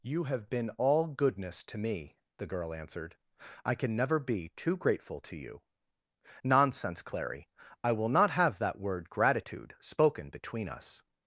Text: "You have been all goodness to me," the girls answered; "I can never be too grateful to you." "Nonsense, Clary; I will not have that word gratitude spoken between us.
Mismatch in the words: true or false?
true